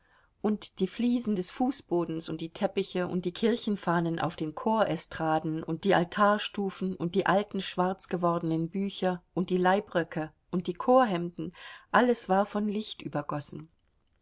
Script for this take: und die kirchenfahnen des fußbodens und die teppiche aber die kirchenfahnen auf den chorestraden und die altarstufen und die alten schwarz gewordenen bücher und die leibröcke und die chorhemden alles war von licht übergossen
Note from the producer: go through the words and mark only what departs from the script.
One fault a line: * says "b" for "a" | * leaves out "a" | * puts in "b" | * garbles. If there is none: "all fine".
* says "fliesen" for "kirchenfahnen"
* says "und" for "aber"